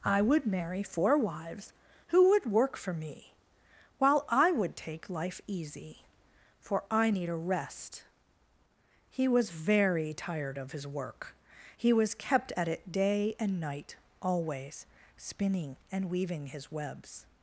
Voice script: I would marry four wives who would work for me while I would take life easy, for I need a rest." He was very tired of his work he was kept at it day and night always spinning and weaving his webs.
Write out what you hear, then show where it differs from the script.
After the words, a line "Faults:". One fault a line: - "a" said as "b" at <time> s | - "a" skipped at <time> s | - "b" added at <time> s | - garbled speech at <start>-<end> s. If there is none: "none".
I would marry four wives who would work for me while I would take life easy, for I need a rest." He was very tired of his work he was kept at it day and night always spinning and weaving his webs.
Faults:
none